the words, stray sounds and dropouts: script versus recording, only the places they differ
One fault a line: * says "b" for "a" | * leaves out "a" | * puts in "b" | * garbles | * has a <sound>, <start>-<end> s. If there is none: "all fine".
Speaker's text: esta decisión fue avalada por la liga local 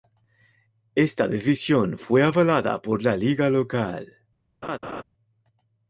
* has a laugh, 4.6-5.0 s